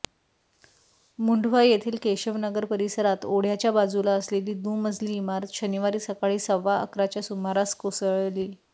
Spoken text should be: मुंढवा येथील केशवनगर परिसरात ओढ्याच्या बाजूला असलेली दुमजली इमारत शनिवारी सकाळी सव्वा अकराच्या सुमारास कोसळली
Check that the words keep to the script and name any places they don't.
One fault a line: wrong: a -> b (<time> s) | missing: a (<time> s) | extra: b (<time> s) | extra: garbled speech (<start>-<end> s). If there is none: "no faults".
no faults